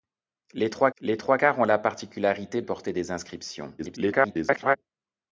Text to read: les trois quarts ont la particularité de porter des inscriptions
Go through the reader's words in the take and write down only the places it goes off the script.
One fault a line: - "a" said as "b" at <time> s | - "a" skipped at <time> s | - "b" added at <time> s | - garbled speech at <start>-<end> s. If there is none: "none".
- "les trois" added at 1.0 s
- "de" skipped at 2.6 s
- garbled speech at 3.8-4.8 s